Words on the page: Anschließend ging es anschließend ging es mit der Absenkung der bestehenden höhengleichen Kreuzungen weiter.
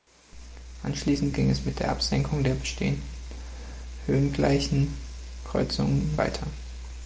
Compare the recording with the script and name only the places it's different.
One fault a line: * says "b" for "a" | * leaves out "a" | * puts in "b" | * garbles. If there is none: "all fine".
* leaves out "anschließend ging es"